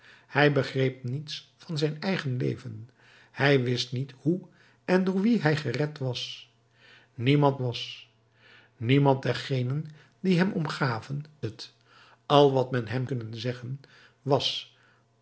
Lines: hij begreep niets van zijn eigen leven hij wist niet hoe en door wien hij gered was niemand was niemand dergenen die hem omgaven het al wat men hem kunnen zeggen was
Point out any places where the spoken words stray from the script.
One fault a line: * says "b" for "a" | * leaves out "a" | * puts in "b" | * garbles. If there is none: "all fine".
all fine